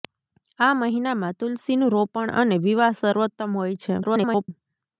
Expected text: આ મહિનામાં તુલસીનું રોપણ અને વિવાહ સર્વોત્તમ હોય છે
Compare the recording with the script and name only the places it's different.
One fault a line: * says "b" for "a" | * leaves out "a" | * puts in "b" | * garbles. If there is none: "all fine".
* garbles